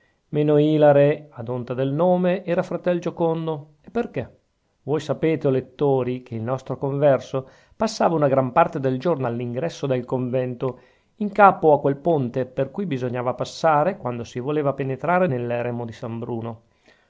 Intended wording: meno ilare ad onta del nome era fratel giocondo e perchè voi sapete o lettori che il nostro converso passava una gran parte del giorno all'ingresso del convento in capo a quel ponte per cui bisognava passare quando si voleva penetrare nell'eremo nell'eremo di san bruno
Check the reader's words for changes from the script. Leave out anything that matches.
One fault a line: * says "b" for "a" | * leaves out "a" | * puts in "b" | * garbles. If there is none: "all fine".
* leaves out "nell'eremo"